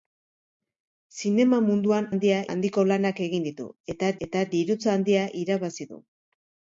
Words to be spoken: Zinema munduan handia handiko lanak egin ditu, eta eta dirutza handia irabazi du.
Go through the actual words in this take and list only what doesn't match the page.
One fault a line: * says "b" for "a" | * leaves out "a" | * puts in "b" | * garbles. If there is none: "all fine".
all fine